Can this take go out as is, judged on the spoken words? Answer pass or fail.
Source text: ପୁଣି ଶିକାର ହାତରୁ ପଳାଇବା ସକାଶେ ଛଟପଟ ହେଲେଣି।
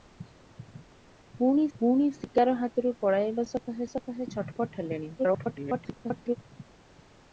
fail